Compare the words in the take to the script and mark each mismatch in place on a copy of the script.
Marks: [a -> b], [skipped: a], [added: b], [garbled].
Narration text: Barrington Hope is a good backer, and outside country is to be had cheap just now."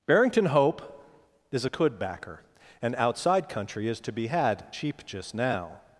Barrington Hope is a [good -> could] backer, and outside country is to be had cheap just now."